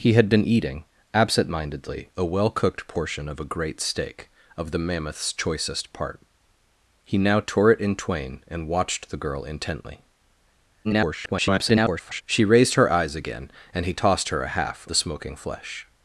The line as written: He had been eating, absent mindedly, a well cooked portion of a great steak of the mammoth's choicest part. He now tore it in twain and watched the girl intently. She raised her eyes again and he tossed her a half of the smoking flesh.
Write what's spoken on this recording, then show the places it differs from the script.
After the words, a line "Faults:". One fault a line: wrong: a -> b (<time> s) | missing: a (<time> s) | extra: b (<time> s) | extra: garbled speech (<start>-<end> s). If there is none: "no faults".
He had been eating, absent mindedly, a well cooked portion of a great steak of the mammoth's choicest part. He now tore it in twain and watched the girl intently. [garbled] She raised her eyes again and he tossed her a half the smoking flesh.
Faults:
extra: garbled speech (10.8-12.2 s)
missing: of (14.9 s)